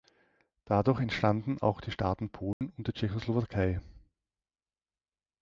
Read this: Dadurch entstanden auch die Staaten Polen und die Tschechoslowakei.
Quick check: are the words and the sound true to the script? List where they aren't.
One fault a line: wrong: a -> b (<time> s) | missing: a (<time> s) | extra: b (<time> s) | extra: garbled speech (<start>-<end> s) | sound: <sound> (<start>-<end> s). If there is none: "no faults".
sound: dropout (2.5-2.6 s)